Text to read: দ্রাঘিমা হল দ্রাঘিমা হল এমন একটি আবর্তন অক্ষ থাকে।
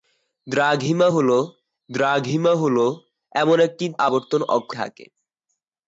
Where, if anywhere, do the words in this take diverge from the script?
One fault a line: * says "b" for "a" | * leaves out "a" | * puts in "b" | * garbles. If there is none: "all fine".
all fine